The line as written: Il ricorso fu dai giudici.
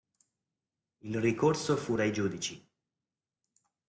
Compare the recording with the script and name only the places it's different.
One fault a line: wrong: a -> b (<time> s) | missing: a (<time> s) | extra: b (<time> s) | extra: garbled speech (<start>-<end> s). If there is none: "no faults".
no faults